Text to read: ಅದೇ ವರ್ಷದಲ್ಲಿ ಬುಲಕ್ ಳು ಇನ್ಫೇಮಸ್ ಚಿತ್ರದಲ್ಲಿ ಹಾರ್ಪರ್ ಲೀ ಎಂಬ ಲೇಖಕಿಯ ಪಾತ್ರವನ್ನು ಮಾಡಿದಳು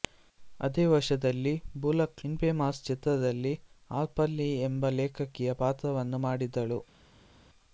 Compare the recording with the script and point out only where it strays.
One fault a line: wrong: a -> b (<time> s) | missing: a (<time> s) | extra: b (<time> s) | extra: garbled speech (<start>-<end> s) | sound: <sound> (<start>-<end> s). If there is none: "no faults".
missing: ಳು (2.2 s)